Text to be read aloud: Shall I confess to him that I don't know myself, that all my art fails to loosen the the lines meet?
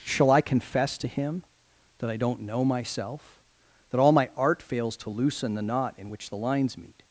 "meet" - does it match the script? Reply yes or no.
yes